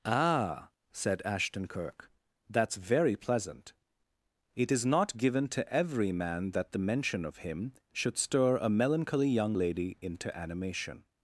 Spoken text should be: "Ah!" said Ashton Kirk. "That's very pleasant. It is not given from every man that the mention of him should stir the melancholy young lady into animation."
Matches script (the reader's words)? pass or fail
fail